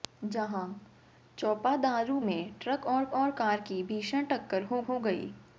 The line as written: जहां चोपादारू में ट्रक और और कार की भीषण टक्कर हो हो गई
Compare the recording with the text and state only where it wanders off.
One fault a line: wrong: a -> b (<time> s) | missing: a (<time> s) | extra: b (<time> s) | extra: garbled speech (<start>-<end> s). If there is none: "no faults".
no faults